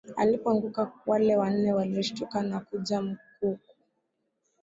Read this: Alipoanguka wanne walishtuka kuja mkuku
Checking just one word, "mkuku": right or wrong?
right